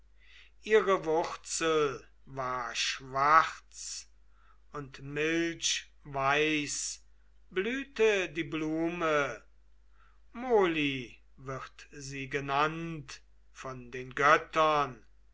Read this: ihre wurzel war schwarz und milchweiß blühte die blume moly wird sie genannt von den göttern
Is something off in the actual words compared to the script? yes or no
no